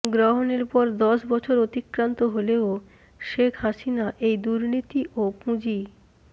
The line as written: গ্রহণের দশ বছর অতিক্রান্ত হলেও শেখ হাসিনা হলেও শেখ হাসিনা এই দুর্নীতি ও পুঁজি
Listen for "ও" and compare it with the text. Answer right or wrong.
right